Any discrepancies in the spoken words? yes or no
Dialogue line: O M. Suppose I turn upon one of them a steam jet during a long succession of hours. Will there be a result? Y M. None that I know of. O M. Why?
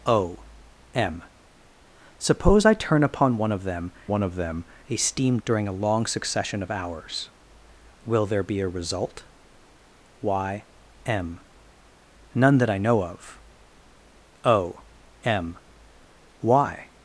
yes